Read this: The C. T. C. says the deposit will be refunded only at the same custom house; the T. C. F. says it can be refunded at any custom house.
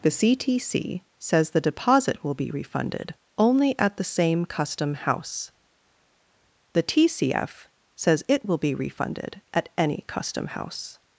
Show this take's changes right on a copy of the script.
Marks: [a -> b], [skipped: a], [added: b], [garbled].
The C. T. C. says the deposit will be refunded only at the same custom house; the T. C. F. says it [can -> will] be refunded at any custom house.